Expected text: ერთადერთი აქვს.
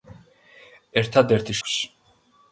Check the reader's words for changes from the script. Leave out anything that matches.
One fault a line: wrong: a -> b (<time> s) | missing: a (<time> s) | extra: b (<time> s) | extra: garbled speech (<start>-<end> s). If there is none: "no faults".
no faults